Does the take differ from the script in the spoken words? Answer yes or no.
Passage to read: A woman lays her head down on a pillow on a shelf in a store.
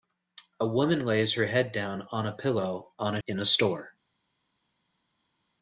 yes